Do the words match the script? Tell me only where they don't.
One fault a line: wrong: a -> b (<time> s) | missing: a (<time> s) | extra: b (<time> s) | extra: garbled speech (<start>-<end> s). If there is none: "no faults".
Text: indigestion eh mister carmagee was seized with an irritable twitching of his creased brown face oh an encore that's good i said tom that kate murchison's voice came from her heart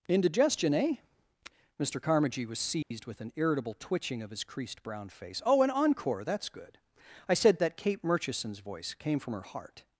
missing: tom (7.6 s)